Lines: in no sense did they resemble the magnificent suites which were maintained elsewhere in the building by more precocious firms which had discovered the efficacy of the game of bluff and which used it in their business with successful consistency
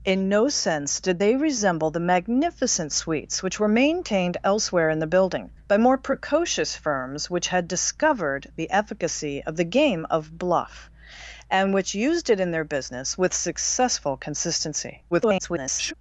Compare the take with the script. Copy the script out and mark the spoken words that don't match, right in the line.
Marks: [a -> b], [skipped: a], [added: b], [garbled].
in no sense did they resemble the magnificent suites which were maintained elsewhere in the building by more precocious firms which had discovered the efficacy of the game of bluff and which used it in their business with successful consistency [garbled]